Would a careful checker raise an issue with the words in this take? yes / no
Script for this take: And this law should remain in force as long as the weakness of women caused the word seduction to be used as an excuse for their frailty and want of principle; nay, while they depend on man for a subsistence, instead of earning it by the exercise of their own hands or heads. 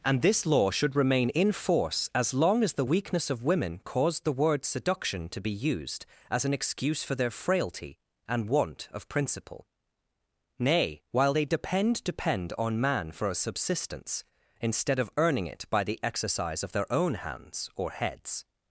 yes